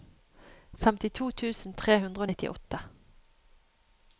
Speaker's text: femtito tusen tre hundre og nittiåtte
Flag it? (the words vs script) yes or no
no